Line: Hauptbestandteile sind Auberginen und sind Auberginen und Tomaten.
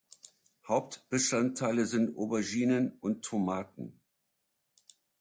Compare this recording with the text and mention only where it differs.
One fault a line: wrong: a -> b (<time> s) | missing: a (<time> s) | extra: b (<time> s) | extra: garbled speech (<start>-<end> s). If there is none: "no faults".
missing: sind Auberginen und (3.2 s)